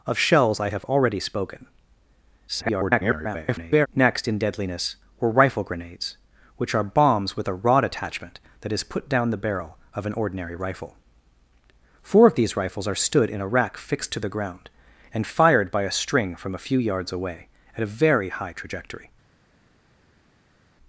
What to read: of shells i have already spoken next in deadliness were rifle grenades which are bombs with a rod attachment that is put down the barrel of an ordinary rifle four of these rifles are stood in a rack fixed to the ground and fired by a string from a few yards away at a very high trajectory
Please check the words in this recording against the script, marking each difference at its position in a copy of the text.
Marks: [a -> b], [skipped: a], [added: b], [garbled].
of shells i have already spoken [garbled] next in deadliness were rifle grenades which are bombs with a rod attachment that is put down the barrel of an ordinary rifle four of these rifles are stood in a rack fixed to the ground and fired by a string from a few yards away at a very high trajectory